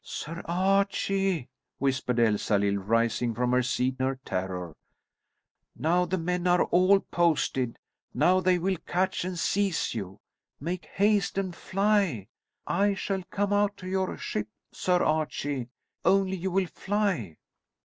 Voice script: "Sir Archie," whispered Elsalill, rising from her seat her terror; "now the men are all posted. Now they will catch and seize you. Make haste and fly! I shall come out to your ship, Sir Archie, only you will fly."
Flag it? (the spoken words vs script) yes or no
no